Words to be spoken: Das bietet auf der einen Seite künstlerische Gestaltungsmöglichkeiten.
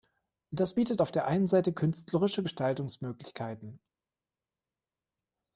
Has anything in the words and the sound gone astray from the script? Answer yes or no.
no